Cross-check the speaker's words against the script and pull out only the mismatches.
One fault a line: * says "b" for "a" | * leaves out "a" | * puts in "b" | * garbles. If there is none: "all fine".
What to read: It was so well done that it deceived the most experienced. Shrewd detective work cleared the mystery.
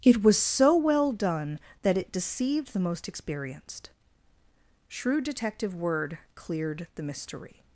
* says "word" for "work"